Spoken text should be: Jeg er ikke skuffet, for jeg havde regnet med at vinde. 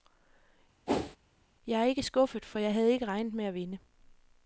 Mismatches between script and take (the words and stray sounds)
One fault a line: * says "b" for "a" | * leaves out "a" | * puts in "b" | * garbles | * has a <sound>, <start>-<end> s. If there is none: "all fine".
* has a whoosh, 0.9-1.2 s
* puts in "ikke"